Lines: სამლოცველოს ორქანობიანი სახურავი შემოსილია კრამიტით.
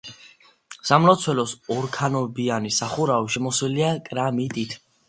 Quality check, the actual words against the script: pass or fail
pass